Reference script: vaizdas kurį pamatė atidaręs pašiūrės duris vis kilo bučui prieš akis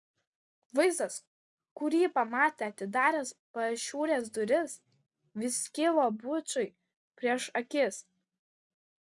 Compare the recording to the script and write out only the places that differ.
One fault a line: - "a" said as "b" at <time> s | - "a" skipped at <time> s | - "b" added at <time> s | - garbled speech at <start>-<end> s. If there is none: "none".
none